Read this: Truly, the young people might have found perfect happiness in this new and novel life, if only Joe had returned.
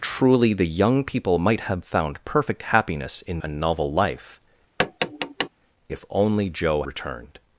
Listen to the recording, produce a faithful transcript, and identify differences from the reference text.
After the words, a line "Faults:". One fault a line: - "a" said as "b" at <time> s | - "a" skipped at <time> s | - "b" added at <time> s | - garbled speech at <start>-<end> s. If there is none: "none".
Truly, the young people might have found perfect happiness in and novel life, if only Joe returned.
Faults:
- "this new" skipped at 3.4 s
- "had" skipped at 6.8 s